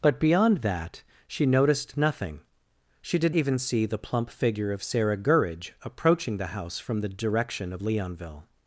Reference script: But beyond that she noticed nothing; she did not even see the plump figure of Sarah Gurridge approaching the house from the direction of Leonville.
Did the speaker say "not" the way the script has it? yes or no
no